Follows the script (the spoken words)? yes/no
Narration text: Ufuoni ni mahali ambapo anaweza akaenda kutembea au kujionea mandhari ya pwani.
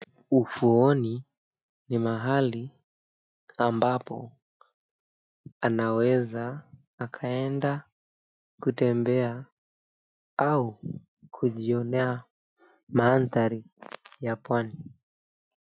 yes